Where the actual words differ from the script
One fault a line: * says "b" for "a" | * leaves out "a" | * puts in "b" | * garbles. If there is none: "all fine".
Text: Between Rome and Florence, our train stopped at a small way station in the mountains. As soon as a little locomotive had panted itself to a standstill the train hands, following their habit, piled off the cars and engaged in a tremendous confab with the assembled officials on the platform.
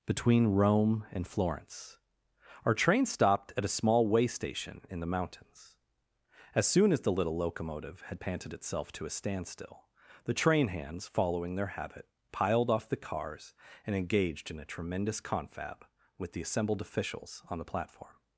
* says "the" for "a"